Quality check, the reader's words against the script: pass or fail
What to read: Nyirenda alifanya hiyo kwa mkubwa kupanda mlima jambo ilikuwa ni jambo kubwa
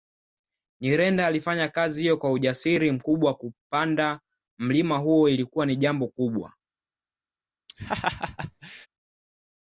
fail